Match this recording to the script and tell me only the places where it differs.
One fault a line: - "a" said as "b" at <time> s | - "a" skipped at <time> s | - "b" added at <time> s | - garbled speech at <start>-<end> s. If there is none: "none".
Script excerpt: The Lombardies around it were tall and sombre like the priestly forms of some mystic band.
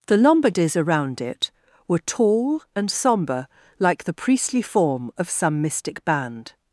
- "forms" said as "form" at 4.6 s